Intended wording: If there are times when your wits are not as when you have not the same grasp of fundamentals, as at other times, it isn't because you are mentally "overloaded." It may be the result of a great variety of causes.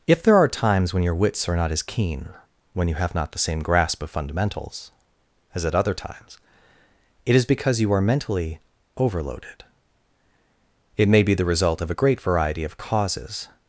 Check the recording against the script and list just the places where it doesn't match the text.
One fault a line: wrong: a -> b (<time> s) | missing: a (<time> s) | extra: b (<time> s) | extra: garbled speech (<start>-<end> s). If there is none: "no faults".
extra: keen (1.8 s)
wrong: isn't -> is (7.3 s)